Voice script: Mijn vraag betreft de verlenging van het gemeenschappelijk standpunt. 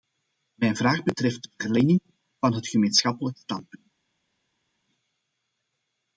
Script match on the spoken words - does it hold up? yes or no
yes